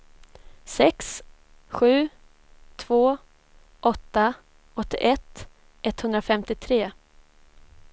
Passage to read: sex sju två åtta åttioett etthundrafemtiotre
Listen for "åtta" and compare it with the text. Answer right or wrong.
right